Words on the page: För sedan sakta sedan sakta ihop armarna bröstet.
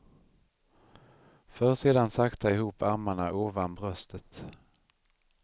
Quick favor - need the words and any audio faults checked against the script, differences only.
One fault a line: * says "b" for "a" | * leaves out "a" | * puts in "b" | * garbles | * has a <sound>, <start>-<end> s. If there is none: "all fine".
* leaves out "sedan sakta"
* puts in "ovan"